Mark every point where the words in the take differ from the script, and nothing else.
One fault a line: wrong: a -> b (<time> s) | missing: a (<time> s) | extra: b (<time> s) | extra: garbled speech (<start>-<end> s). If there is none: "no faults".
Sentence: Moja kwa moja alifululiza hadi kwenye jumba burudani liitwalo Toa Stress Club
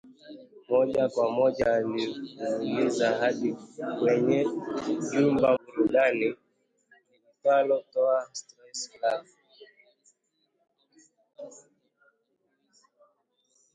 no faults